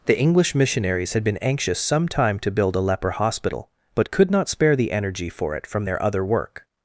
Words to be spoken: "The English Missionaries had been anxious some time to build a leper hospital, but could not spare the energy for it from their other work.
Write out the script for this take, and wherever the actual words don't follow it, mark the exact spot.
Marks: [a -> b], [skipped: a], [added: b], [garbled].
"The English Missionaries had been anxious some time to build a leper hospital, but could not spare the energy for it from their other work.